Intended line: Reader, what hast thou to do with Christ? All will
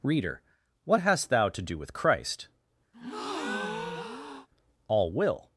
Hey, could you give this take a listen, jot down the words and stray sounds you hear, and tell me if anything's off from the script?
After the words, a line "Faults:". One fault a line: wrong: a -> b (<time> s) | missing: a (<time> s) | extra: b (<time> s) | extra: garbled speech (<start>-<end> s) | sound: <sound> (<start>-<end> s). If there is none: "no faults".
Reader, what hast thou to do with Christ? All will
Faults:
sound: breath (2.9-4.5 s)